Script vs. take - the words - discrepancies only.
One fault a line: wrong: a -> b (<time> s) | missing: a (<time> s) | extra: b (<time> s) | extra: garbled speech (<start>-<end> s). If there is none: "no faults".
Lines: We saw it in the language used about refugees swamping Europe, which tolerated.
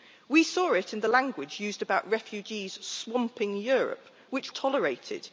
no faults